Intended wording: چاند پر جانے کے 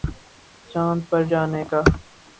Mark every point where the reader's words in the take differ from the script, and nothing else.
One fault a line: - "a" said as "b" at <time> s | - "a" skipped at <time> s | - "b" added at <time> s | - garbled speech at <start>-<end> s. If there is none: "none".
none